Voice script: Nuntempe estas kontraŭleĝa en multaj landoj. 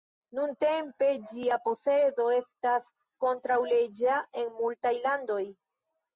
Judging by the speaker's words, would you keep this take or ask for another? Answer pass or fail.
fail